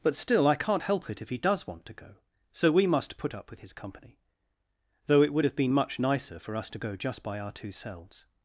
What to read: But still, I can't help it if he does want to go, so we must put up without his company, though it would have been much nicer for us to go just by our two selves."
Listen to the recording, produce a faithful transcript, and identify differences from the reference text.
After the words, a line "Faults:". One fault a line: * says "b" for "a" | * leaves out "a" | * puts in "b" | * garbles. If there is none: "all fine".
But still, I can't help it if he does want to go, so we must put up with his company, though it would have been much nicer for us to go just by our two selves."
Faults:
* says "with" for "without"